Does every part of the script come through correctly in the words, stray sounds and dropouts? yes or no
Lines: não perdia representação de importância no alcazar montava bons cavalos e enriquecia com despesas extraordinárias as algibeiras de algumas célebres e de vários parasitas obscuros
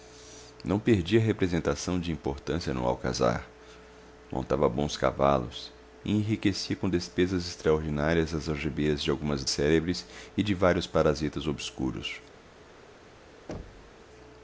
no